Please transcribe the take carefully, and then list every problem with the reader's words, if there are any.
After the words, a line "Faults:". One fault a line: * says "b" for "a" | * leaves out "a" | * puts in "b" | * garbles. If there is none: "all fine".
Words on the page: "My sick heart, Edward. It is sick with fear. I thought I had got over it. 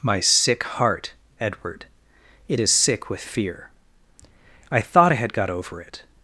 "My sick heart, Edward. It is sick with fear. I thought I had got over it.
Faults:
all fine